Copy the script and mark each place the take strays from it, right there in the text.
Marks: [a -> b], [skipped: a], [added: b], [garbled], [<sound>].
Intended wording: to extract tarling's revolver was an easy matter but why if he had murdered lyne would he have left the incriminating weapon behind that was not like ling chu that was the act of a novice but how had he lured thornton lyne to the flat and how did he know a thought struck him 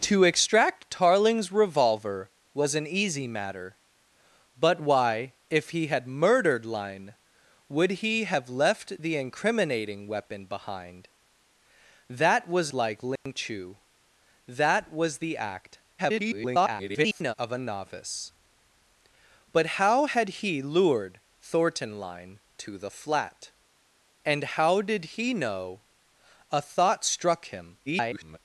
to extract tarling's revolver was an easy matter but why if he had murdered lyne would he have left the incriminating weapon behind that was [skipped: not] like ling [dropout] chu that was the act [garbled] of a novice but how had he lured thornton lyne to the flat and how did he know a thought struck him [garbled]